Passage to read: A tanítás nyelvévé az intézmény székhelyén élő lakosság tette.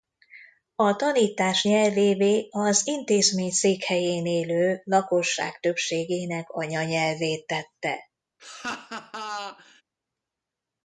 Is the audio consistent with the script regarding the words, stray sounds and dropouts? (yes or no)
no